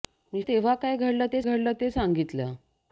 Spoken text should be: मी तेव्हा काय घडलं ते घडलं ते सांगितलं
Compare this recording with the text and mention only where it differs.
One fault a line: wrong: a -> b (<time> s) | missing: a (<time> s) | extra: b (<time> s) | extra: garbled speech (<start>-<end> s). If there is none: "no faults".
no faults